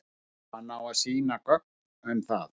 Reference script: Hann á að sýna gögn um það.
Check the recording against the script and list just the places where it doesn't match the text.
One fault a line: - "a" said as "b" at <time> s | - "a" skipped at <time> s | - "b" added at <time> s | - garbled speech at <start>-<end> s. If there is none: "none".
none